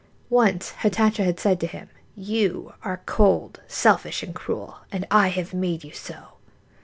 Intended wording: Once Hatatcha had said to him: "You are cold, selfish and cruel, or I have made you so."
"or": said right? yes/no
no